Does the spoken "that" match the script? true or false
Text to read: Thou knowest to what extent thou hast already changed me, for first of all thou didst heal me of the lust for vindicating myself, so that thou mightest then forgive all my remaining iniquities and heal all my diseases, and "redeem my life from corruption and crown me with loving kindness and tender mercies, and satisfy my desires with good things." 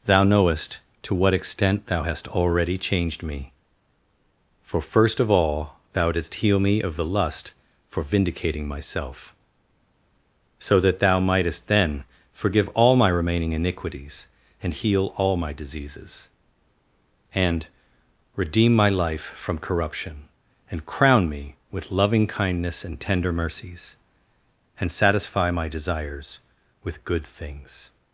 true